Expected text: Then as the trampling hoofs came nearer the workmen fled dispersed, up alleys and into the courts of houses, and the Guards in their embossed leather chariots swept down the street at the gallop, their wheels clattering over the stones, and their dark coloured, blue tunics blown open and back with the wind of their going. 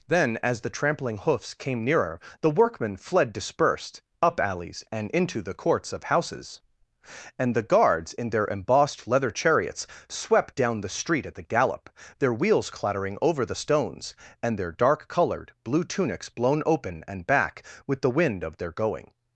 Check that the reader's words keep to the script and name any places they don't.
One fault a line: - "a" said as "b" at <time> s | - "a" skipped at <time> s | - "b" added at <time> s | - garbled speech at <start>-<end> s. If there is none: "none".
none